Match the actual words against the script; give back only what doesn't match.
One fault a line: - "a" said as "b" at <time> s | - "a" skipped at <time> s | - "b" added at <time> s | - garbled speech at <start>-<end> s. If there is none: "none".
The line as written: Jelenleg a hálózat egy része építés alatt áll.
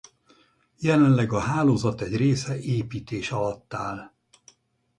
none